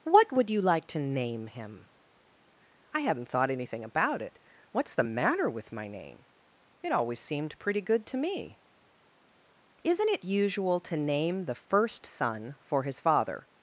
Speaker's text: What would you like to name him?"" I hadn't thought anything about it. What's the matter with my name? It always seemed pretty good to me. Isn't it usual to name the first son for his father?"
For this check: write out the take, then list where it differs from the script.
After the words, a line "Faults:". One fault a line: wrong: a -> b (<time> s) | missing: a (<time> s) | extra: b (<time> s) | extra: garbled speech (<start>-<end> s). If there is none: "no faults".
What would you like to name him?"" I hadn't thought anything about it. What's the matter with my name? It always seemed pretty good to me. Isn't it usual to name the first son for his father?"
Faults:
no faults